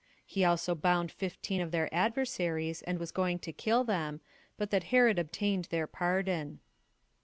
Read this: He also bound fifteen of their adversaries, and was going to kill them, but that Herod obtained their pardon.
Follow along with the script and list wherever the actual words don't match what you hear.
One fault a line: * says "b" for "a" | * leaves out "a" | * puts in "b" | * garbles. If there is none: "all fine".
all fine